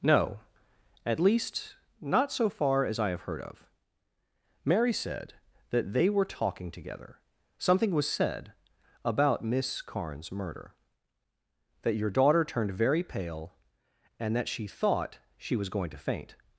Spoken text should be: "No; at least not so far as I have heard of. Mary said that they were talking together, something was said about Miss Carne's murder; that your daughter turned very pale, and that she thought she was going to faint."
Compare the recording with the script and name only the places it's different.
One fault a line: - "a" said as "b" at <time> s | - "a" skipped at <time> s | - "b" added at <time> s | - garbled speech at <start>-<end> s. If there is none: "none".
none